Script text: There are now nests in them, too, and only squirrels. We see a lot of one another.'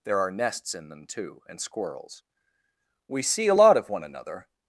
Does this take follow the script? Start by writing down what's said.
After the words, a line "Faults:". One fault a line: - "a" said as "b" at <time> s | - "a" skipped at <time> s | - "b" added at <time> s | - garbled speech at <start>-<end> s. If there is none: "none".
There are nests in them, too, and squirrels. We see a lot of one another.'
Faults:
- "now" skipped at 0.3 s
- "only" skipped at 1.6 s